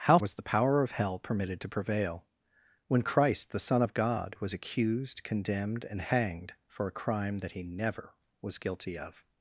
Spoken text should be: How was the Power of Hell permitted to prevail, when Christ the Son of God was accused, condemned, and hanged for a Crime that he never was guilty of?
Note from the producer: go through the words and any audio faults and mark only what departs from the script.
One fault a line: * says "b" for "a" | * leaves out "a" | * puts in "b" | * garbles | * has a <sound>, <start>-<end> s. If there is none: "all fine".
all fine